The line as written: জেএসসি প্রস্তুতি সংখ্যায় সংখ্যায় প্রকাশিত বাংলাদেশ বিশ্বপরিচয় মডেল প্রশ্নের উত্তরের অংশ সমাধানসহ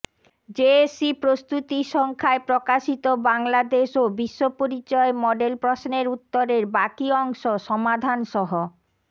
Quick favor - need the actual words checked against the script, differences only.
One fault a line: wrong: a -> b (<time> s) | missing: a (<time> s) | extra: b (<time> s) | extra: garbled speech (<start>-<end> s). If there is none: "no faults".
missing: সংখ্যায় (2.4 s)
extra: ও (4.0 s)
extra: বাকি (6.8 s)